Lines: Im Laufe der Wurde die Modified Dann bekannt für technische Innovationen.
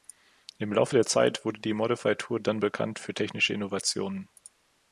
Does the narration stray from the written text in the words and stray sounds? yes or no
yes